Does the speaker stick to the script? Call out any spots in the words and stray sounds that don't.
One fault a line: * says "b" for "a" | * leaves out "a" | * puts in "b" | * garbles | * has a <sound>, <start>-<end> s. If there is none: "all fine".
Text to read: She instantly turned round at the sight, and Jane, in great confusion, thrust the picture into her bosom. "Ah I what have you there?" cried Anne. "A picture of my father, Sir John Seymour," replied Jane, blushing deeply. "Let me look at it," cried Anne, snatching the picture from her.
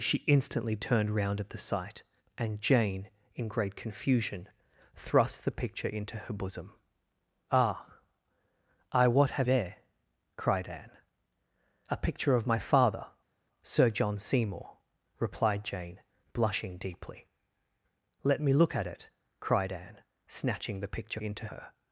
* leaves out "you"
* says "into" for "from"